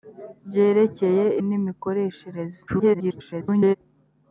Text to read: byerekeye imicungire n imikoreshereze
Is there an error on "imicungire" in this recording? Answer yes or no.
yes